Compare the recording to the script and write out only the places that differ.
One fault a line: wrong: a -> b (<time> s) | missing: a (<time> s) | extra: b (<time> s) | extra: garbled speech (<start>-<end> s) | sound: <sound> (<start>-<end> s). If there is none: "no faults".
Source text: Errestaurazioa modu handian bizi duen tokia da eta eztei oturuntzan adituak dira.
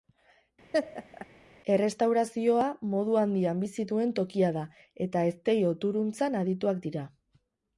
sound: laugh (0.7-1.3 s)